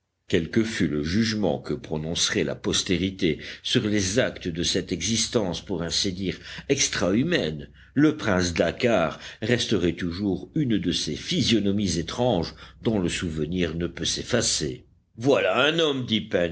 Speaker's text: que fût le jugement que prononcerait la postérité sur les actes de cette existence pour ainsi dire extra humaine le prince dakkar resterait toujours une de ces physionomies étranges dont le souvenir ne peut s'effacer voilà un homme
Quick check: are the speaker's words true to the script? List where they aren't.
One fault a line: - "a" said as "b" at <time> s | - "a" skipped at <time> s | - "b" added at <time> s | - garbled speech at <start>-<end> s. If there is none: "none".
none